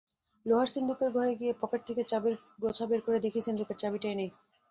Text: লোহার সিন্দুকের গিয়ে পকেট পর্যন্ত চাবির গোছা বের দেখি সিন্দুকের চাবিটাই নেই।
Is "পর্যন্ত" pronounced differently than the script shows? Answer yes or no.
yes